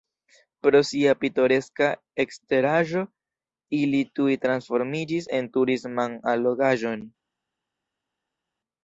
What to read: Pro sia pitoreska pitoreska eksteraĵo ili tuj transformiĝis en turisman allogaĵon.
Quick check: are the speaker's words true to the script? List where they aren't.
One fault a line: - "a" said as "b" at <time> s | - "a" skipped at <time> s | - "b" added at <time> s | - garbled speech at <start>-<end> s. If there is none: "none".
- "pitoreska" skipped at 1.9 s